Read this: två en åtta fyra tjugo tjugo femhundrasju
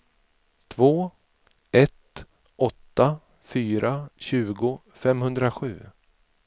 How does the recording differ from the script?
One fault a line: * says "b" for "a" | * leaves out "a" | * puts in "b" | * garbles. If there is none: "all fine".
* says "ett" for "en"
* leaves out "tjugo"